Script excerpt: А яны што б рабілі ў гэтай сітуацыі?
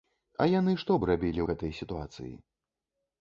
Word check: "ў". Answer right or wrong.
wrong